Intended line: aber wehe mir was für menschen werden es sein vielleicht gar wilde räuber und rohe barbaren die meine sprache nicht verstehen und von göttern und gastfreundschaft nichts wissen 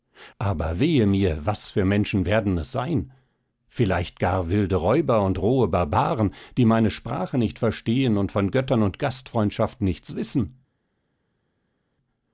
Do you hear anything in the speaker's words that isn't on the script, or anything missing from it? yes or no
no